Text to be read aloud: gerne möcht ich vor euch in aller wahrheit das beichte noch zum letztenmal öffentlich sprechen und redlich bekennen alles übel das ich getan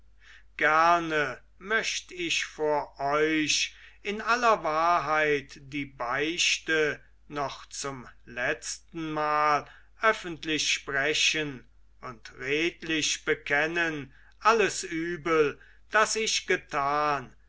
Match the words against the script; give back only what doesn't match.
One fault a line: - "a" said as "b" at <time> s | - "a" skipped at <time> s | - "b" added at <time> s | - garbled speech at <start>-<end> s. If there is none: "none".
- "das" said as "die" at 5.6 s